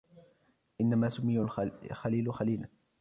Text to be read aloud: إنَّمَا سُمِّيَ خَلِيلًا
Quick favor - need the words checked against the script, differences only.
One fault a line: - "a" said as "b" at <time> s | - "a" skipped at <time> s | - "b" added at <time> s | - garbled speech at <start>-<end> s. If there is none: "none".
- "الْخَلِيلُ" added at 1.4 s